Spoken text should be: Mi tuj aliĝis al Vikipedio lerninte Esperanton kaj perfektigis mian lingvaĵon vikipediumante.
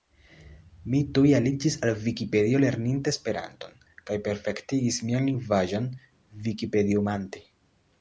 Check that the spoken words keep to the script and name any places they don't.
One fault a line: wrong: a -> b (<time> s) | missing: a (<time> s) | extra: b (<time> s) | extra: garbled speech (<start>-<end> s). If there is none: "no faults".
no faults